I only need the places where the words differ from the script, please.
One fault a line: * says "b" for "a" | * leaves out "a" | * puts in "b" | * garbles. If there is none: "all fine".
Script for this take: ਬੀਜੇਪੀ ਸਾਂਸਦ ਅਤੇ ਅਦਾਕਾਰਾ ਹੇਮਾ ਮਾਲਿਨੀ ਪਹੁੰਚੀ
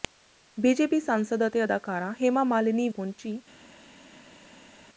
all fine